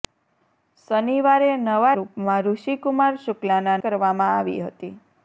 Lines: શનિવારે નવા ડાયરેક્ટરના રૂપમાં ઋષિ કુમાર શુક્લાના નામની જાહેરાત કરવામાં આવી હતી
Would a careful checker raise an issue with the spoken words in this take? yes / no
yes